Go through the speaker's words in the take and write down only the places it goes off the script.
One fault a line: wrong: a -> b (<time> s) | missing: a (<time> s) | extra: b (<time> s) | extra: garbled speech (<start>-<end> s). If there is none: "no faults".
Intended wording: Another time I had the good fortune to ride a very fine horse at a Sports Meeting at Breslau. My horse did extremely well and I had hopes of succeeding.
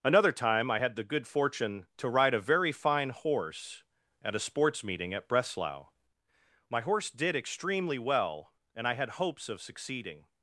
no faults